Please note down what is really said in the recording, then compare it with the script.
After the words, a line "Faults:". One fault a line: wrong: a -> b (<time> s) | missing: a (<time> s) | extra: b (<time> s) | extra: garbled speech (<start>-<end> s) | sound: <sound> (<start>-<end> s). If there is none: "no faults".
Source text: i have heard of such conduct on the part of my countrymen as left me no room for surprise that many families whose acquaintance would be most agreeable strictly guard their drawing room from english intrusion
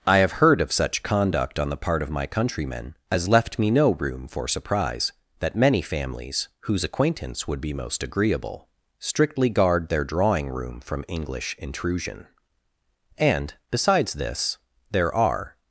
i have heard of such conduct on the part of my countrymen as left me no room for surprise that many families whose acquaintance would be most agreeable strictly guard their drawing room from english intrusion and besides this there are
Faults:
extra: and besides this there are (13.2 s)